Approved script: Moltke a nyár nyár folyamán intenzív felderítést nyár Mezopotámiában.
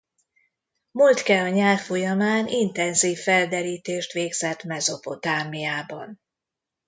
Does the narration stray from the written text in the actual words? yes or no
yes